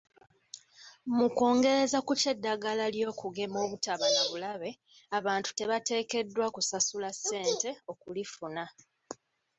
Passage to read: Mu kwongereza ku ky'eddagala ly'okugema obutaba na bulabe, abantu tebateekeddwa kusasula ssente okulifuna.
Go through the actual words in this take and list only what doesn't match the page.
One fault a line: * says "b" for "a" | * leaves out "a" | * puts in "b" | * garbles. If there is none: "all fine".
all fine